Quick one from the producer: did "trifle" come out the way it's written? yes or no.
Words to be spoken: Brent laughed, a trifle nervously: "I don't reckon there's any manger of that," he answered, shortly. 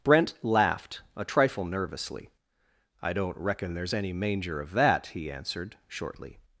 yes